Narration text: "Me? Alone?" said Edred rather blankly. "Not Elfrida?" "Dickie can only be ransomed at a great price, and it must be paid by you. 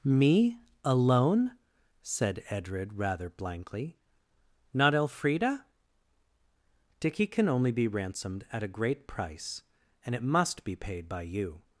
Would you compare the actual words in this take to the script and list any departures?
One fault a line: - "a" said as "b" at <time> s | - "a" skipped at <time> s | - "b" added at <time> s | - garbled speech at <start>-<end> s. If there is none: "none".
none